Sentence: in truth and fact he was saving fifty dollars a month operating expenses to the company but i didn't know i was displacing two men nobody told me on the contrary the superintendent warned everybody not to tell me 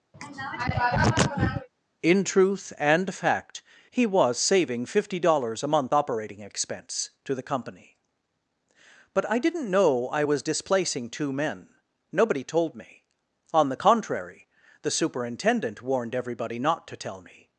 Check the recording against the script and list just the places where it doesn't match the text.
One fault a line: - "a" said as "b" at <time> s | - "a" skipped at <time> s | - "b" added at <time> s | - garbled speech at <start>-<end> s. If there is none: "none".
- "expenses" said as "expense" at 6.4 s